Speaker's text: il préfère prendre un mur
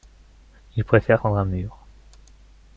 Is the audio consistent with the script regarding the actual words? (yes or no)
yes